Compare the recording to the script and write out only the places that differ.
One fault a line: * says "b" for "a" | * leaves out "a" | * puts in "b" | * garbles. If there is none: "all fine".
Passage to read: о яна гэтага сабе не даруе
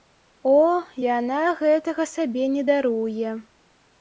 all fine